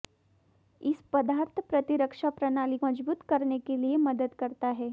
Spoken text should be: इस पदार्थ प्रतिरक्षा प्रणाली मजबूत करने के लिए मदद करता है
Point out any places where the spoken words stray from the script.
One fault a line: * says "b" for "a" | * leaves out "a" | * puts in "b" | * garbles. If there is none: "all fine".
all fine